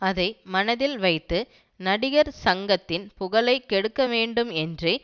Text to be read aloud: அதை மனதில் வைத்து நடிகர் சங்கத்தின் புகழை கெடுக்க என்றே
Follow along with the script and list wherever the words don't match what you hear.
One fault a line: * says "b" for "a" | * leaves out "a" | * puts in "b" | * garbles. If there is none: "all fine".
* puts in "வேண்டும்"